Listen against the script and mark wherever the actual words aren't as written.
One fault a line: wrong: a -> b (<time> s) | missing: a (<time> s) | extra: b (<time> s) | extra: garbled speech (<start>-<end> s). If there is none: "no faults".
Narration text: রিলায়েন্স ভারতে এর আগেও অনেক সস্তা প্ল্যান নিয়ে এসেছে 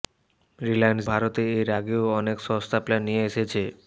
no faults